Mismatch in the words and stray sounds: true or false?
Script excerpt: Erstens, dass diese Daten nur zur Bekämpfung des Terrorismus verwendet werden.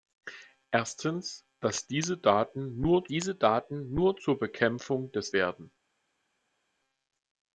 true